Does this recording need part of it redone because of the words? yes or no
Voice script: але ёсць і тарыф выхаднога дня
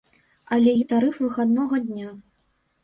yes